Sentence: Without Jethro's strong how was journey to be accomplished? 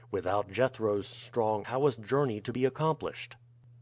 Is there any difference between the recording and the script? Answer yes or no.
no